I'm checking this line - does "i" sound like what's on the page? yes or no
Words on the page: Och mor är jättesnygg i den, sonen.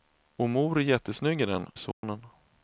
yes